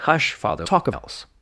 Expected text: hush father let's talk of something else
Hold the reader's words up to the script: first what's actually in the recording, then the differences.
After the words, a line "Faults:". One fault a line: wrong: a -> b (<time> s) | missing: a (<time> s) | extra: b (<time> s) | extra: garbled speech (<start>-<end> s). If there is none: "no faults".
hush father talk of else
Faults:
missing: let's (0.7 s)
missing: something (1.0 s)